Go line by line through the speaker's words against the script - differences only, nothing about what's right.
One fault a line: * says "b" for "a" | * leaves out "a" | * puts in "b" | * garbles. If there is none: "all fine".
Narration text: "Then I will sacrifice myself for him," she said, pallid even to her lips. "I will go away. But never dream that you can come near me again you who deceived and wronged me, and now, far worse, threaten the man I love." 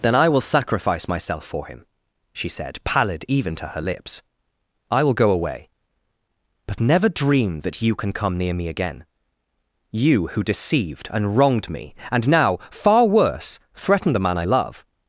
all fine